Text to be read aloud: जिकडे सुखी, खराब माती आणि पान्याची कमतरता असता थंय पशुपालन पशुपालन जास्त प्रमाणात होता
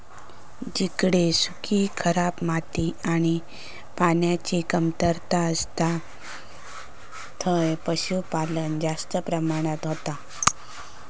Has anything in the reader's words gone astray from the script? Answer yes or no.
yes